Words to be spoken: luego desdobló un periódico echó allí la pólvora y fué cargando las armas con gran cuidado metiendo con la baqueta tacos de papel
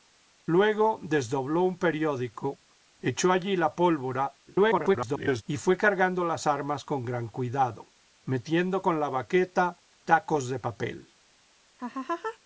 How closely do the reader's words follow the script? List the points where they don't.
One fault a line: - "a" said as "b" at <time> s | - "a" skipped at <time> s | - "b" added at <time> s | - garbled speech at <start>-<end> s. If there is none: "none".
- garbled speech at 4.5-5.4 s